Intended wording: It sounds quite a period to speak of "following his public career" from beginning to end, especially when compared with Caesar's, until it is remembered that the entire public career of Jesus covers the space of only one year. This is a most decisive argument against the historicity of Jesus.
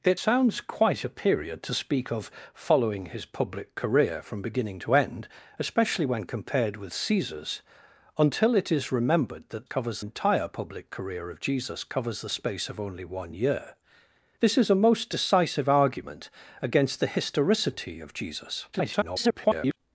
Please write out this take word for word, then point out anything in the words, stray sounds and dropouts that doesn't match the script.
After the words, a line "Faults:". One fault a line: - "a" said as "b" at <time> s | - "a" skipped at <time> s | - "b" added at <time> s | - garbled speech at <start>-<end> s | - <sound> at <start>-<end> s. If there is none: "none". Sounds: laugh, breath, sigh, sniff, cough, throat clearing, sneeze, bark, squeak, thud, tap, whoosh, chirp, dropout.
It sounds quite a period to speak of "following his public career" from beginning to end, especially when compared with Caesar's, until it is remembered that covers entire public career of Jesus covers the space of only one year. This is a most decisive argument against the historicity of Jesus. [garbled]
Faults:
- "the" said as "covers" at 9.6 s
- garbled speech at 18.7-19.8 s